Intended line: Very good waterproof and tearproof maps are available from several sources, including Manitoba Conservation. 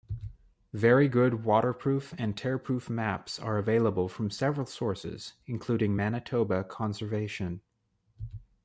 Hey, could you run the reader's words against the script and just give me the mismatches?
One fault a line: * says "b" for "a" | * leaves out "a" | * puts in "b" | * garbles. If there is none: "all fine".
all fine